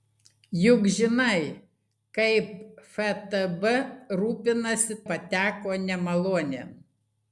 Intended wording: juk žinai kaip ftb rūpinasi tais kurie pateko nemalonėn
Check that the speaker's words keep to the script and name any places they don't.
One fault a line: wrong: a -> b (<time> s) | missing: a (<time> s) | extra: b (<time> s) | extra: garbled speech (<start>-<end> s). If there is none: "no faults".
missing: tais kurie (5.0 s)